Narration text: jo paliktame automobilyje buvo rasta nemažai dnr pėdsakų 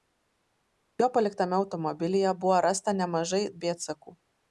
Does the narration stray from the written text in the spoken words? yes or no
yes